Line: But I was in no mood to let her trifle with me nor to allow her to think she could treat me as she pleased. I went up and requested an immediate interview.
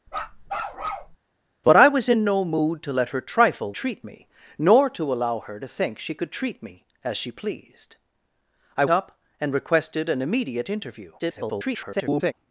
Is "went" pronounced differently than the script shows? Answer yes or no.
yes